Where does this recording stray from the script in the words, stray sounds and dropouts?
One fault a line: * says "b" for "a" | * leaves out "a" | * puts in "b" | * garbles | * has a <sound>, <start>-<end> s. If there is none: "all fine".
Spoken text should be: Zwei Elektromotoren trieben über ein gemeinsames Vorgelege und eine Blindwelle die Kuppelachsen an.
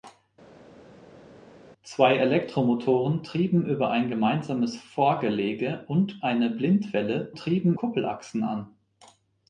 * says "trieben" for "die"